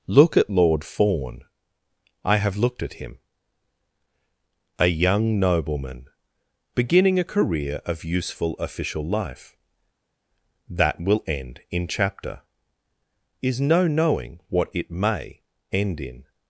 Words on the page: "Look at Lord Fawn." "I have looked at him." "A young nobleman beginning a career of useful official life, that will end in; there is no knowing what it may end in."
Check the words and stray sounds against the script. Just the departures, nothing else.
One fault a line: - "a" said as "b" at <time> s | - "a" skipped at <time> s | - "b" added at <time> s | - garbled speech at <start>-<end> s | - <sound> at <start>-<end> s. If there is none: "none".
- "there" said as "chapter" at 11.9 s